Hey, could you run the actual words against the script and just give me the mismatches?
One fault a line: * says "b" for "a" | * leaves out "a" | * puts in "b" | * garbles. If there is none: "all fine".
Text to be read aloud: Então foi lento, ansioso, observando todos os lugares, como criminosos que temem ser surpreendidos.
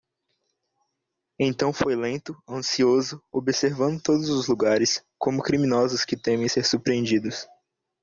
all fine